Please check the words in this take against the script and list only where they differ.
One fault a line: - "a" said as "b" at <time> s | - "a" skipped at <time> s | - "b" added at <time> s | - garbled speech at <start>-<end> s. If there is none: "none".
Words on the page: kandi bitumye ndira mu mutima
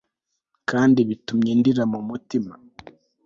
none